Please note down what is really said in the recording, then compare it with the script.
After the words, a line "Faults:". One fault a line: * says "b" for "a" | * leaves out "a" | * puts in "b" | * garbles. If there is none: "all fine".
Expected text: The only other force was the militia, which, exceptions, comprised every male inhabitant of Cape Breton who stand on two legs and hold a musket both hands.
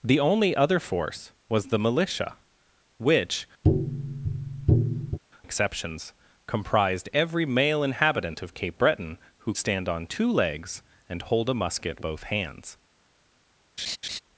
The only other force was the militia, which, exceptions, comprised every male inhabitant of Cape Breton who stand on two legs and hold a musket both hands.
Faults:
all fine